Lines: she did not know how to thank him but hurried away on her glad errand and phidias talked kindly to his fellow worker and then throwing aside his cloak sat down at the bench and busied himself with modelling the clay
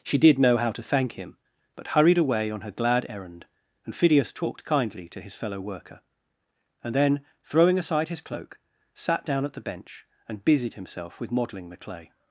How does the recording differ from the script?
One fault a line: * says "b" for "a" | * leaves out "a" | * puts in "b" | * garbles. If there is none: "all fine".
* leaves out "not"